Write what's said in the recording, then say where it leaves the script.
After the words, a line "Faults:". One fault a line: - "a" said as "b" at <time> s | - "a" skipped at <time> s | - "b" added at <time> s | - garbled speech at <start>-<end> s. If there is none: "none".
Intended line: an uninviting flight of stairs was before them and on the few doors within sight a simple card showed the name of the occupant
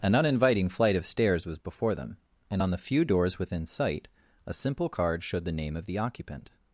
an uninviting flight of stairs was before them and on the few doors within sight a simple card showed the name of the occupant
Faults:
none